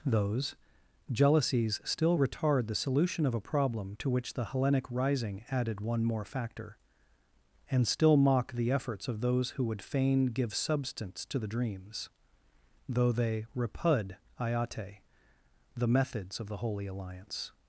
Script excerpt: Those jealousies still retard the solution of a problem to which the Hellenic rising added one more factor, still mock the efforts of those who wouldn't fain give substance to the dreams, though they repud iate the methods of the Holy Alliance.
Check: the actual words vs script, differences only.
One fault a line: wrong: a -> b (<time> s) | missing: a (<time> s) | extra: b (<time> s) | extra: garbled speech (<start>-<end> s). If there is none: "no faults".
extra: and (7.7 s)
wrong: wouldn't -> would (9.7 s)